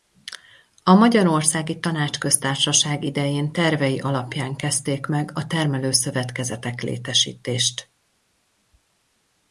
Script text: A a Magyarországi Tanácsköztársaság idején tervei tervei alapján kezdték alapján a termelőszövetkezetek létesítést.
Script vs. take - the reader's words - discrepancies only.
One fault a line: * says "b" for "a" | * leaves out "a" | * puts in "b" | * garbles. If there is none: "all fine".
* leaves out "a"
* leaves out "tervei"
* says "meg" for "alapján"